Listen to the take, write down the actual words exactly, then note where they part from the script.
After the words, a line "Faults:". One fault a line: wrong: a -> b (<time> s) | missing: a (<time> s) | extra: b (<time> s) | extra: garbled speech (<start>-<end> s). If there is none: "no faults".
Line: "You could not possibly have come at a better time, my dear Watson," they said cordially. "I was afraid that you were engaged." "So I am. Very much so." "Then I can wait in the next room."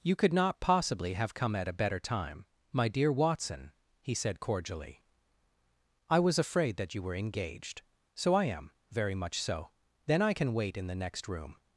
"You could not possibly have come at a better time, my dear Watson," he said cordially. "I was afraid that you were engaged." "So I am. Very much so." "Then I can wait in the next room."
Faults:
wrong: they -> he (4.0 s)